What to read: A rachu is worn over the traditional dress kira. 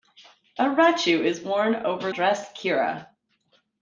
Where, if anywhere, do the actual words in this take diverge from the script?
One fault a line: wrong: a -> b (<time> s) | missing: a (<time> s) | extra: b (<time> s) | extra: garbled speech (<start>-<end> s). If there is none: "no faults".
missing: the traditional (2.1 s)